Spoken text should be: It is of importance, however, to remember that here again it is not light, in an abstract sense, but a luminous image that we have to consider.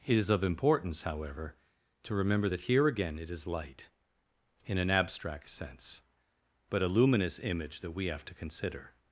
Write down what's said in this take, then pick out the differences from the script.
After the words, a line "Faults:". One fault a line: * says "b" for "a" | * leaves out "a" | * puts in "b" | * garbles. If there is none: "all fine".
It is of importance, however, to remember that here again it is light, in an abstract sense, but a luminous image that we have to consider.
Faults:
* leaves out "not"